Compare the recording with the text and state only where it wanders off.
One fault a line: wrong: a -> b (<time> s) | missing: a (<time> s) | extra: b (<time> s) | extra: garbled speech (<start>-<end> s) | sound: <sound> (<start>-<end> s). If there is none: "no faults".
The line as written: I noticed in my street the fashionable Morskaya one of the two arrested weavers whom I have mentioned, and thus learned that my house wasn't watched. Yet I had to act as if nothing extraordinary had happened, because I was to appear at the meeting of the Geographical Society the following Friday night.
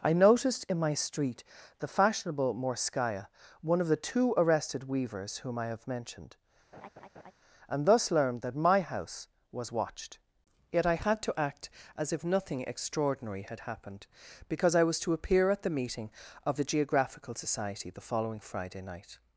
sound: laugh (6.7-7.3 s)
wrong: wasn't -> was (9.5 s)